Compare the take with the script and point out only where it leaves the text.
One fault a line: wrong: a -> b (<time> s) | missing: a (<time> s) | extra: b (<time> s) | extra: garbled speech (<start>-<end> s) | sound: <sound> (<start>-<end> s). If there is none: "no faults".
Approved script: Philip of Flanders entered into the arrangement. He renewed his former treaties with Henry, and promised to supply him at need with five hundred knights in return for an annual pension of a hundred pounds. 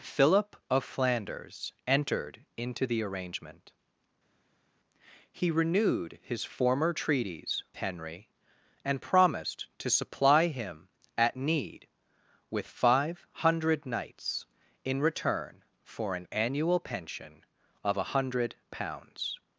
missing: with (7.6 s)